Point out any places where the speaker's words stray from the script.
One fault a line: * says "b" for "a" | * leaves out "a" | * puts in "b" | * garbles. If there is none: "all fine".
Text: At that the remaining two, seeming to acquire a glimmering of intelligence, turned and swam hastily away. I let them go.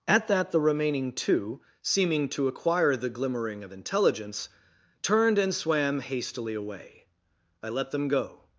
* says "the" for "a"